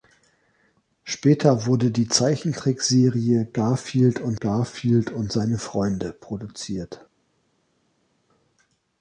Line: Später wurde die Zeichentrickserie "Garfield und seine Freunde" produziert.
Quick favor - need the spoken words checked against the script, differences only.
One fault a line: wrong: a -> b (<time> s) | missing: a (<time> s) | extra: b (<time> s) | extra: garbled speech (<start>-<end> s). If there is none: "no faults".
extra: garfield und (4.4 s)